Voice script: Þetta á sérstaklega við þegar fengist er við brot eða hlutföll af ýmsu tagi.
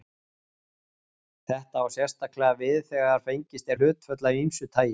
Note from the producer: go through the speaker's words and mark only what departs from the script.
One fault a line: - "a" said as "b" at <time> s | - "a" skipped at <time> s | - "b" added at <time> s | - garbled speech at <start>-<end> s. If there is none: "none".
- "við brot eða" skipped at 3.8 s